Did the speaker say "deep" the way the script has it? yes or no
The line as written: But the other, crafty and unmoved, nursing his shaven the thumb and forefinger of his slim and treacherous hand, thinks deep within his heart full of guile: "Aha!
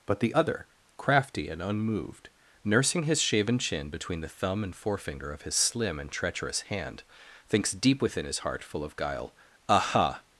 yes